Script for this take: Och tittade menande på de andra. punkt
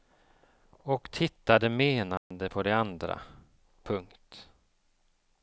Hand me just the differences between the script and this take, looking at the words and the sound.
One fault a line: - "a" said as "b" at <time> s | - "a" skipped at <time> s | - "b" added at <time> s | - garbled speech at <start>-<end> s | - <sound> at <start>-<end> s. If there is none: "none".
- dropout at 2.2-2.3 s